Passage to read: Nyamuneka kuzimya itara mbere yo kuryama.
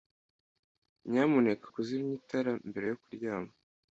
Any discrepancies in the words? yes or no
no